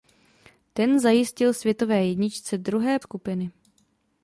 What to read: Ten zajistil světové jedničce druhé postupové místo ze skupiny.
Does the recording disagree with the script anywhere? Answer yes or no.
yes